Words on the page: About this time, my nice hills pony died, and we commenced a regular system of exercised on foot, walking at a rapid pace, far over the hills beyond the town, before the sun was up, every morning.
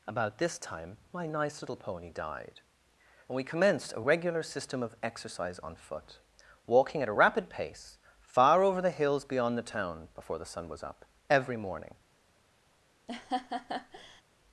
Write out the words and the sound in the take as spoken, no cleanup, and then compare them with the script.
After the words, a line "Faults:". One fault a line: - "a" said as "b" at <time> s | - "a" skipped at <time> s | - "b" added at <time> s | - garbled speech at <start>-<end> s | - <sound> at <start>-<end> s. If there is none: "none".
About this time, my nice little pony died, and we commenced a regular system of exercise on foot, walking at a rapid pace, far over the hills beyond the town, before the sun was up, every morning.
Faults:
- "hills" said as "little" at 1.6 s
- "exercised" said as "exercise" at 5.0 s
- laugh at 13.1-14.2 s